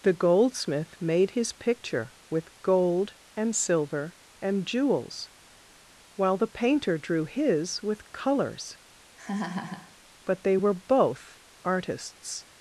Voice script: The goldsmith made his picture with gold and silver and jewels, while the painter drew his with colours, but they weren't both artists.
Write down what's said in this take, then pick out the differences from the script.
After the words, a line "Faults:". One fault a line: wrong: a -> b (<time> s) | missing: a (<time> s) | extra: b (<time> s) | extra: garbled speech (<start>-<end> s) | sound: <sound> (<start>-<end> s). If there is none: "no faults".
The goldsmith made his picture with gold and silver and jewels, while the painter drew his with colours, but they were both artists.
Faults:
sound: laugh (9.2-10.0 s)
wrong: weren't -> were (10.5 s)